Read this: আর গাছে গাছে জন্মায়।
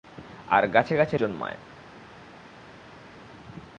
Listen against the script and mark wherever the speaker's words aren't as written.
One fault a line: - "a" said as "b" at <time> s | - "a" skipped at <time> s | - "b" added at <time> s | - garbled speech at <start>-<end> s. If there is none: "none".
none